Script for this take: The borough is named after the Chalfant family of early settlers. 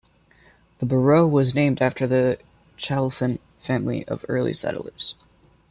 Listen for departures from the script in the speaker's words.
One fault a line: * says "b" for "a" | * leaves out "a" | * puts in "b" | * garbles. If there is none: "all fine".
* says "was" for "is"